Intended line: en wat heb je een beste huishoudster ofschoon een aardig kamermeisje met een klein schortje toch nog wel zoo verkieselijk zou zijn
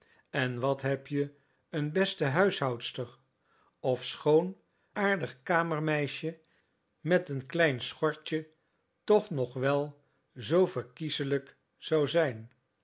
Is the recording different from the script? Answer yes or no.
yes